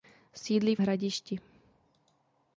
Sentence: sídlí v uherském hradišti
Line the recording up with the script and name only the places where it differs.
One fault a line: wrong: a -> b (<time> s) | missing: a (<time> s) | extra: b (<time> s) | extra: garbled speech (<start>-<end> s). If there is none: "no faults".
missing: uherském (0.8 s)